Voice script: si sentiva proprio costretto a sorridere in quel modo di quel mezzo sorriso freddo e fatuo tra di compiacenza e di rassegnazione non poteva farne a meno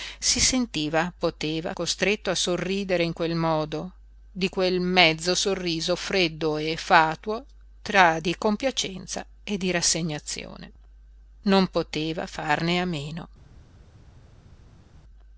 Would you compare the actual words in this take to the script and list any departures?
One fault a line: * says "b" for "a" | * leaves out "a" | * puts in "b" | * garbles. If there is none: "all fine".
* says "poteva" for "proprio"